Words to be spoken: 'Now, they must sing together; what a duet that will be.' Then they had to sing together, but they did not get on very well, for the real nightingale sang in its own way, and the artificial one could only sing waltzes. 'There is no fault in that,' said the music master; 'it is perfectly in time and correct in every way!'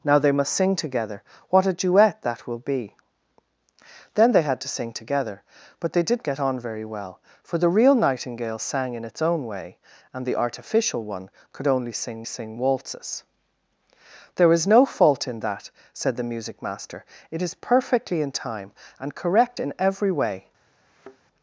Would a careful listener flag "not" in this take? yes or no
yes